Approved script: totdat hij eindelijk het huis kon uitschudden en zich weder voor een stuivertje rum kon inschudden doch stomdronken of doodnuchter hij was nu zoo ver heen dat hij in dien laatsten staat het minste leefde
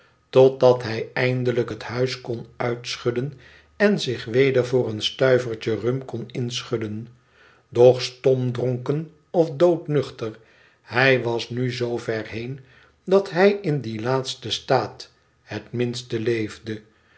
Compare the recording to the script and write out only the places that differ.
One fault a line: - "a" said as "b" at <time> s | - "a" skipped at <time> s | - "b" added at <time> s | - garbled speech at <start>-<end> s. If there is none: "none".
none